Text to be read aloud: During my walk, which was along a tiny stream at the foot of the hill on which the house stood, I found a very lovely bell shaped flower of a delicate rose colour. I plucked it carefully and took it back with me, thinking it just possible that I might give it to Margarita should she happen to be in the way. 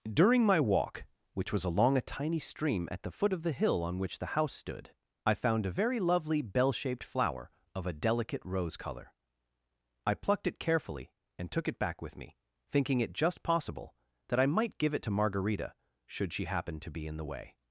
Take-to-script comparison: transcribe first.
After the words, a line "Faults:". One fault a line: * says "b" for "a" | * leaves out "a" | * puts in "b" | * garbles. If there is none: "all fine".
During my walk, which was along a tiny stream at the foot of the hill on which the house stood, I found a very lovely bell shaped flower of a delicate rose colour. I plucked it carefully and took it back with me, thinking it just possible that I might give it to Margarita should she happen to be in the way.
Faults:
all fine